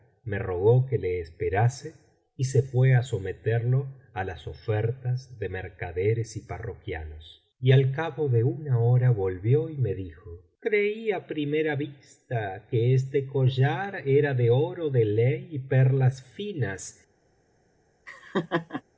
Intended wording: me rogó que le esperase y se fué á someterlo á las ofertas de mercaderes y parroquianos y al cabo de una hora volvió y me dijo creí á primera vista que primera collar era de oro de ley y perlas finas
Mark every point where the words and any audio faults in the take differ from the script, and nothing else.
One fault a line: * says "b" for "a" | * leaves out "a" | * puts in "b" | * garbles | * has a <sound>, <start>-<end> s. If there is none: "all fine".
* says "este" for "primera"
* has a laugh, 18.1-18.8 s